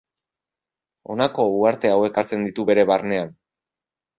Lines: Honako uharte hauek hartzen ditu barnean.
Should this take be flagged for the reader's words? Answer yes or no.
yes